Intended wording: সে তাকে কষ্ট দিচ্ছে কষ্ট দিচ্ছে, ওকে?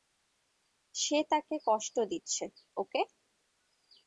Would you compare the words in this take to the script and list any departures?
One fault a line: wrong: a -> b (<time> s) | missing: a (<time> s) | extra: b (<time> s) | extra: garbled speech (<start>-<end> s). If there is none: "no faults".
missing: কষ্ট দিচ্ছে (2.4 s)